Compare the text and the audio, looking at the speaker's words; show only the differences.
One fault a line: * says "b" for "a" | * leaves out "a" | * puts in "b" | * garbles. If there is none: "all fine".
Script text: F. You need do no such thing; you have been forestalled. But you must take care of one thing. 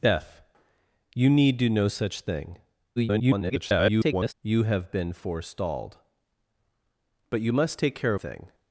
* garbles
* leaves out "of one"